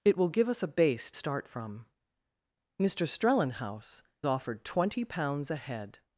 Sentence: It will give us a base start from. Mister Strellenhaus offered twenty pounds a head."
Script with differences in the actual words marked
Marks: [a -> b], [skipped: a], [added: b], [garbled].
It will give us a base start from. Mister Strellenhaus offered twenty pounds a head."